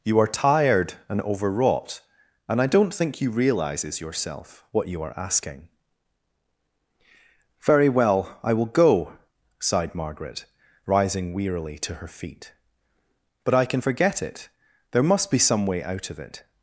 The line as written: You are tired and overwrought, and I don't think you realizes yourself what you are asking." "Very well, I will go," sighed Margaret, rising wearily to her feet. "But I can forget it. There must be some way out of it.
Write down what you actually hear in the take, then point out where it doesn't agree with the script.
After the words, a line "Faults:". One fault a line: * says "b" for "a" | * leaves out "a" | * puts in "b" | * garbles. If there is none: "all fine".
You are tired and overwrought, and I don't think you realizes yourself what you are asking." "Very well, I will go," sighed Margaret, rising wearily to her feet. "But I can forget it. There must be some way out of it.
Faults:
all fine